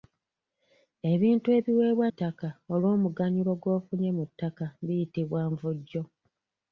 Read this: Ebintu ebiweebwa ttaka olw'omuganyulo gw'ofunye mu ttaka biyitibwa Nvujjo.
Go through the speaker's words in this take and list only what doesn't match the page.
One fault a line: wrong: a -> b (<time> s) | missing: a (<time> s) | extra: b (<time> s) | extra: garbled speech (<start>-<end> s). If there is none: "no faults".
no faults